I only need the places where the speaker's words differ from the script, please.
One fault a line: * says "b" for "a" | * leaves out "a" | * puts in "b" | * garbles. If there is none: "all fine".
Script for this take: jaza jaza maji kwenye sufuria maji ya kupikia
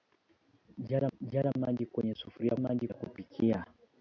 all fine